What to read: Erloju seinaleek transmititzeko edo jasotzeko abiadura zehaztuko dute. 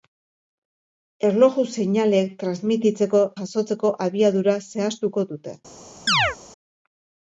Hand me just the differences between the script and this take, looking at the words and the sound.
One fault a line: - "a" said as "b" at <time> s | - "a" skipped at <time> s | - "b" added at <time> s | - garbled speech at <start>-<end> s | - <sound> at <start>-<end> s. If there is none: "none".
- "edo" skipped at 3.2 s
- chirp at 6.1-6.4 s